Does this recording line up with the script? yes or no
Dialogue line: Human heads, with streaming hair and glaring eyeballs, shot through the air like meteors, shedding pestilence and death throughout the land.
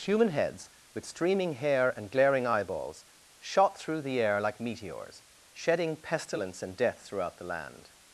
yes